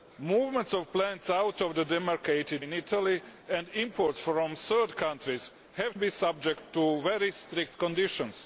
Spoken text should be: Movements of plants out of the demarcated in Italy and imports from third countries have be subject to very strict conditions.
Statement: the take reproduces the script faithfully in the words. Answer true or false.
true